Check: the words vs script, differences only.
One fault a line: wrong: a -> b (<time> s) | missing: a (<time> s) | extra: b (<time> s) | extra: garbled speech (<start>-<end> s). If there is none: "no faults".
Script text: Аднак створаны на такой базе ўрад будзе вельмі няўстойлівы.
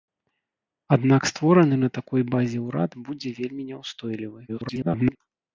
extra: garbled speech (4.5-5.2 s)